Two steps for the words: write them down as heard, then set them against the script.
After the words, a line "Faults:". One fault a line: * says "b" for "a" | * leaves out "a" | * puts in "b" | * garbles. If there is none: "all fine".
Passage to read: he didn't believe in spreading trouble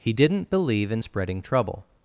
he didn't believe in spreading trouble
Faults:
all fine